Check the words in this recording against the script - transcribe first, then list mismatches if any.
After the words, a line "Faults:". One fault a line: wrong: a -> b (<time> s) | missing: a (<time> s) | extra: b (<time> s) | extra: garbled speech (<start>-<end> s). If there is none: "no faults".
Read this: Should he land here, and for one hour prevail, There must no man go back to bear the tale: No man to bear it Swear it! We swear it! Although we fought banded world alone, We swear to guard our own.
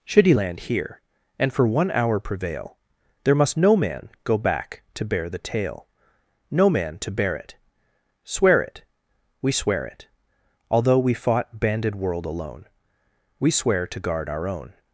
Should he land here, and for one hour prevail, There must no man go back to bear the tale: No man to bear it Swear it! We swear it! Although we fought banded world alone, We swear to guard our own.
Faults:
no faults